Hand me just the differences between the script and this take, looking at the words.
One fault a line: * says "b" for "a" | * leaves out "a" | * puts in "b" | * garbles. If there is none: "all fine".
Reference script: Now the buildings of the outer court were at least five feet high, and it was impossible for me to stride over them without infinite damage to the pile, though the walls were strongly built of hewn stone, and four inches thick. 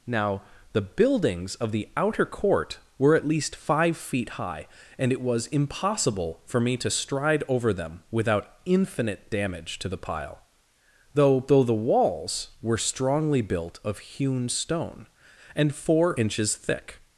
* puts in "though"